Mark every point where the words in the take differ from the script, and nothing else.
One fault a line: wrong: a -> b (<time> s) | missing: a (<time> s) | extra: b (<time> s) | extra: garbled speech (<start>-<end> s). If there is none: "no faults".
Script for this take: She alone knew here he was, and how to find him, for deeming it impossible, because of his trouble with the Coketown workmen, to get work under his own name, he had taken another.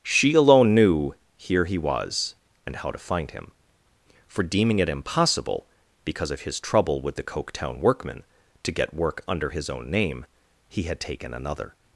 no faults